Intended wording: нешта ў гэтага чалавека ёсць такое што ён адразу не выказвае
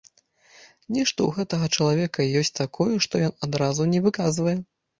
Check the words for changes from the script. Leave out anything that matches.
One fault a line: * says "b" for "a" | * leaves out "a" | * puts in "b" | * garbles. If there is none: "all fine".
all fine